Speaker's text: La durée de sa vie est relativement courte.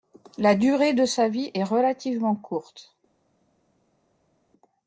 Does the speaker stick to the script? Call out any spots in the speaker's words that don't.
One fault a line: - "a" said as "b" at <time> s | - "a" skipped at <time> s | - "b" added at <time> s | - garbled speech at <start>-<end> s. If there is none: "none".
none